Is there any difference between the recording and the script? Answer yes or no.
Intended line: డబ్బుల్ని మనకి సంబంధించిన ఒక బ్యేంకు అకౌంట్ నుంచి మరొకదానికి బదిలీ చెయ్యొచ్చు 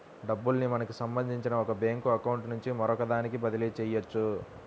no